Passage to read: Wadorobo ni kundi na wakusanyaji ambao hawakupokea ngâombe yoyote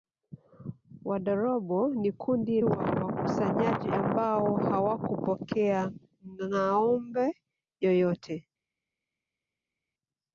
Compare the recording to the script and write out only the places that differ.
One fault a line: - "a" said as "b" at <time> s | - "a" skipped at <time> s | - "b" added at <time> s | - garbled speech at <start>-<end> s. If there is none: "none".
none